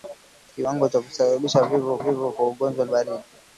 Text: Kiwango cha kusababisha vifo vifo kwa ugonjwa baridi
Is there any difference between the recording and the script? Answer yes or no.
no